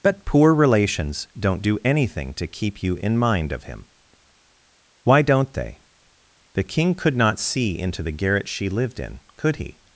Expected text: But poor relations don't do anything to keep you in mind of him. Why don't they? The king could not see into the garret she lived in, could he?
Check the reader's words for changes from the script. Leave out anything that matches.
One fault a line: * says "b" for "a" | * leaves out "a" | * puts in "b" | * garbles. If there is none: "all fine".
all fine